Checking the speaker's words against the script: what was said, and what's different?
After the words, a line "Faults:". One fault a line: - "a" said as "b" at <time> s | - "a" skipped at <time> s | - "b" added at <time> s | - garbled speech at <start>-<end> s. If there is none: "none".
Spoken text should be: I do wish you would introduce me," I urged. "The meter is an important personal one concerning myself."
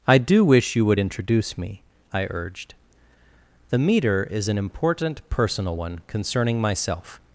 I do wish you would introduce me," I urged. "The meter is an important personal one concerning myself."
Faults:
none